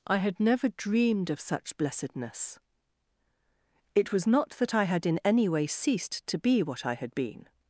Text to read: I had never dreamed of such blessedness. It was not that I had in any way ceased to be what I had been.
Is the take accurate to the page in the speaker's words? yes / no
yes